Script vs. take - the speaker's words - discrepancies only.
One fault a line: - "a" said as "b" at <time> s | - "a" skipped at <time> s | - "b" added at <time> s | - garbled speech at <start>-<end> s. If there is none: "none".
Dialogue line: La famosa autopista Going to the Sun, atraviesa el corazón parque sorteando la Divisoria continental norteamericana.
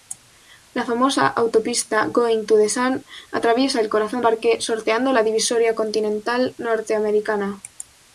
none